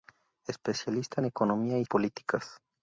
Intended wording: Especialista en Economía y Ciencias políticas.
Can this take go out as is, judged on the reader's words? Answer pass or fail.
fail